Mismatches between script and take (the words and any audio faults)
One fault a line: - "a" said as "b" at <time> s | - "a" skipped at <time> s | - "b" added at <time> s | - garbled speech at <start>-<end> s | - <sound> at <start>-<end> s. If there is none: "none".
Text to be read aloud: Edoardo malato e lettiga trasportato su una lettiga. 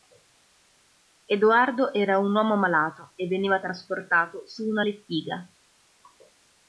- "era un uomo" added at 1.9 s
- "lettiga" said as "veniva" at 3.3 s